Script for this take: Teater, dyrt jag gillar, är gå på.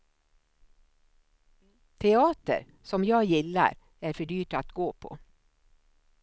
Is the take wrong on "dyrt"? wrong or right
wrong